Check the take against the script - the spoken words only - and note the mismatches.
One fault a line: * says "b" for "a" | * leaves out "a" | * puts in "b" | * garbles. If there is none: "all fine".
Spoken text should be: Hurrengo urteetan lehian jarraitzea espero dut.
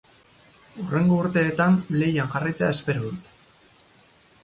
all fine